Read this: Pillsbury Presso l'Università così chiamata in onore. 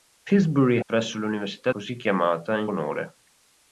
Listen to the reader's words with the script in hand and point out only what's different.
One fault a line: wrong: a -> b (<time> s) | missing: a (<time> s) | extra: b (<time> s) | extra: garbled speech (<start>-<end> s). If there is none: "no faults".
no faults